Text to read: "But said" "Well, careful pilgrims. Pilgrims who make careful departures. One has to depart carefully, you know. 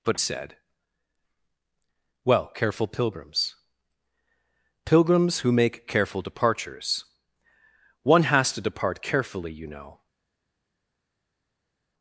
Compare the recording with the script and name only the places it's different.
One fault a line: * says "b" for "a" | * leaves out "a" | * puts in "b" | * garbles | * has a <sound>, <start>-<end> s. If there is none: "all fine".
all fine